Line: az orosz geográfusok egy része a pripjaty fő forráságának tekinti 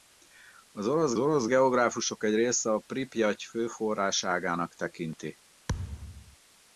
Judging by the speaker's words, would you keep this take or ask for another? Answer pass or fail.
fail